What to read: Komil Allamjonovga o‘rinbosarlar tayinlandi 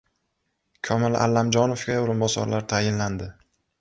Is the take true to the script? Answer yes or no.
yes